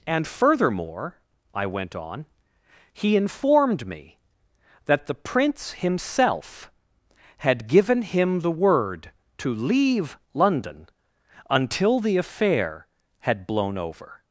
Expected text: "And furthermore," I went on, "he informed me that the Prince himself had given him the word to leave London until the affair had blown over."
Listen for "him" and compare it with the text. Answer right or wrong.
right